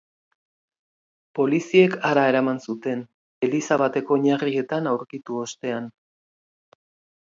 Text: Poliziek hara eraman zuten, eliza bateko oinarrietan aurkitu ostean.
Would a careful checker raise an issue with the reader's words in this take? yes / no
no